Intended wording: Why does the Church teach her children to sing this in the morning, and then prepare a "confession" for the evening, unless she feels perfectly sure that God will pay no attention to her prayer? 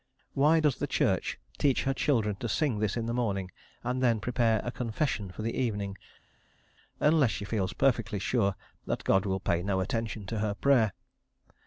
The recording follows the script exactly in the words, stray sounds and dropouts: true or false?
true